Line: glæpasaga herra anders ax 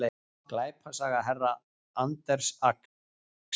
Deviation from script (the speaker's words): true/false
false